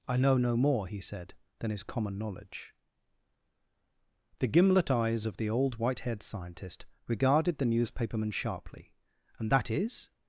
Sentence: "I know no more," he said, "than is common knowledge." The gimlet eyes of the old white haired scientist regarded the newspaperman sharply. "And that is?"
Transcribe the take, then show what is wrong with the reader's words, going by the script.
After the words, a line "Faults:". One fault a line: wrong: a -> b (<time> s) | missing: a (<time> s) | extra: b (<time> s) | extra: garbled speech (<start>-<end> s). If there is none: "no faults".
"I know no more," he said, "than is common knowledge." The gimlet eyes of the old white haired scientist regarded the newspaperman sharply. "And that is?"
Faults:
no faults